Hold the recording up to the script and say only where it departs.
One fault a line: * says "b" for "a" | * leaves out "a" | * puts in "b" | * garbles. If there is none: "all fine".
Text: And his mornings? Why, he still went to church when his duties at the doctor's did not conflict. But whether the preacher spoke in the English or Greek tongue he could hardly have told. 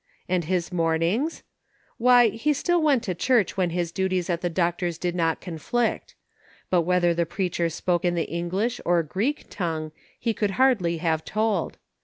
all fine